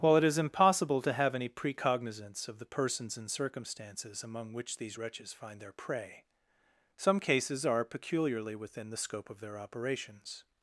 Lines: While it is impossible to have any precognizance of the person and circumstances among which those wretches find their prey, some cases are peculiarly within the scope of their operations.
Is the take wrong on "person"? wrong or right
wrong